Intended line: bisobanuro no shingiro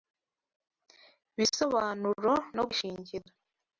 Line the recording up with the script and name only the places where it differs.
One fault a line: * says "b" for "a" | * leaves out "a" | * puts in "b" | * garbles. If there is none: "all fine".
all fine